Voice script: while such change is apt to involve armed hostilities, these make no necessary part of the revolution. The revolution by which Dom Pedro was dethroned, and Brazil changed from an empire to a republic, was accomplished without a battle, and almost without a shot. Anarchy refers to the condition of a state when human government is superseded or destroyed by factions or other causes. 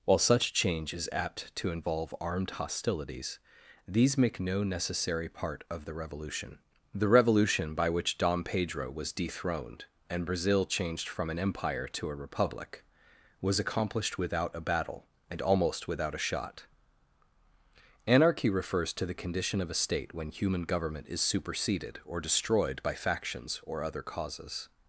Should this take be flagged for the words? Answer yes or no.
no